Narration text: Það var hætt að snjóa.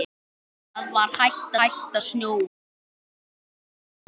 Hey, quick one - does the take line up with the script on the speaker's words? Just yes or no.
no